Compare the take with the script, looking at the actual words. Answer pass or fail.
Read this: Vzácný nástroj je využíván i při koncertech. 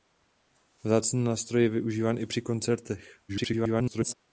fail